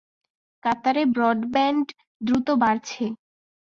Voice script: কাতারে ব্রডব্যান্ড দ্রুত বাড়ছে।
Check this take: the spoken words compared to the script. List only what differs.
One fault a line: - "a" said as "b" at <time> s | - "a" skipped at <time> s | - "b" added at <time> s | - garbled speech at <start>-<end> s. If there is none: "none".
none